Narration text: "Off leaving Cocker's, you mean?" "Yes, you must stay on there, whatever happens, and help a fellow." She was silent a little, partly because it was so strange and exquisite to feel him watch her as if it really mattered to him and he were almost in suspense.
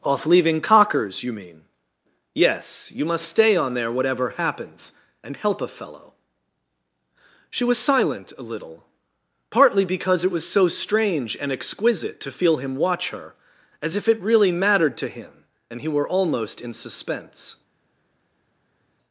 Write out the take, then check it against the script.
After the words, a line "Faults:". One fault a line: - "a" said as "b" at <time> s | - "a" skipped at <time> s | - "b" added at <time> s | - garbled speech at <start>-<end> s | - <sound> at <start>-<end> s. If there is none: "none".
"Off leaving Cocker's, you mean?" "Yes, you must stay on there, whatever happens, and help a fellow." She was silent a little, partly because it was so strange and exquisite to feel him watch her as if it really mattered to him and he were almost in suspense.
Faults:
none